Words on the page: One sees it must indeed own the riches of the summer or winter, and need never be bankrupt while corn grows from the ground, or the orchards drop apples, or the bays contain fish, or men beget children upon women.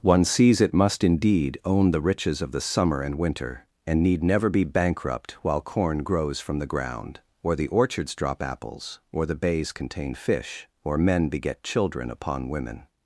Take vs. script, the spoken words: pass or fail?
fail